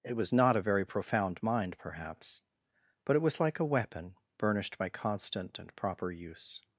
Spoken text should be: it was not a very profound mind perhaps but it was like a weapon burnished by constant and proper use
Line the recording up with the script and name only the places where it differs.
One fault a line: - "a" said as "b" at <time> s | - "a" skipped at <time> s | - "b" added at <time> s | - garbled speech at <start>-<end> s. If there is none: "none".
none